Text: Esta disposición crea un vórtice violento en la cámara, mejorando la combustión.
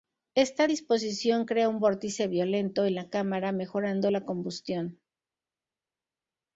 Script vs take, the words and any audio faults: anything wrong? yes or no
no